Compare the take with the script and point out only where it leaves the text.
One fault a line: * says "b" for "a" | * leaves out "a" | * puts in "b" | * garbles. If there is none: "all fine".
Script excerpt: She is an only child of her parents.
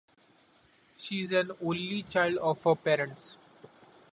all fine